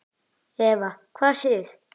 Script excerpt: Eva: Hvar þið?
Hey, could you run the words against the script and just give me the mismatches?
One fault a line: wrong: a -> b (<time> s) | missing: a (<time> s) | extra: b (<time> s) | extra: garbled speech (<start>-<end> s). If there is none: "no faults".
no faults